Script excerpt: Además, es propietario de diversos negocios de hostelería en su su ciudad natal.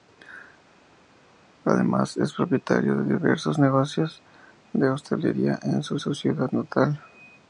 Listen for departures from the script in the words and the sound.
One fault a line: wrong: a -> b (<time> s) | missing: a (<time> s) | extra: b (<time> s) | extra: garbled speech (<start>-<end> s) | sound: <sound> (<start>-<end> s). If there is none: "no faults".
no faults